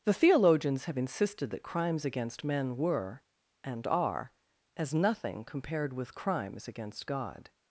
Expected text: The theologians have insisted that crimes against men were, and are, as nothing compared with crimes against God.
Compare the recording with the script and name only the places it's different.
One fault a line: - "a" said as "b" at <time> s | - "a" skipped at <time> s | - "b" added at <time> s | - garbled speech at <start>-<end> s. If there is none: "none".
none